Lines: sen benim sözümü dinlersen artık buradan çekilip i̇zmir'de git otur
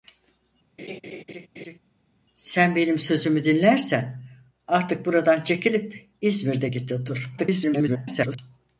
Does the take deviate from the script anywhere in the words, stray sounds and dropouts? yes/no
yes